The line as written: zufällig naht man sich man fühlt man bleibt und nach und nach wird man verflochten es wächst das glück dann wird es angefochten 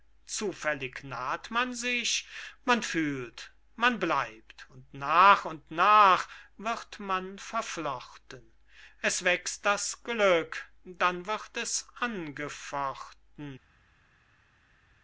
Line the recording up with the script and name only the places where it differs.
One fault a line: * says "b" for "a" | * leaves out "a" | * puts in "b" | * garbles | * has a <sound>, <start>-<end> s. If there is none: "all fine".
all fine